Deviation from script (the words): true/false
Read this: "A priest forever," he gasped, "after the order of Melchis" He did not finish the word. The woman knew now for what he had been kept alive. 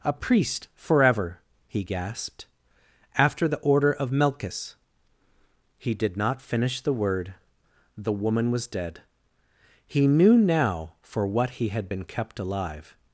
true